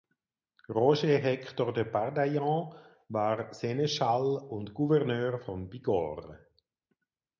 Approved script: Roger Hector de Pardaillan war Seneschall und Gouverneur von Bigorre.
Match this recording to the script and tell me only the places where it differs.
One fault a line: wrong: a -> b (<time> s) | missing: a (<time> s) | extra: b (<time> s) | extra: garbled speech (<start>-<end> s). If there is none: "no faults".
no faults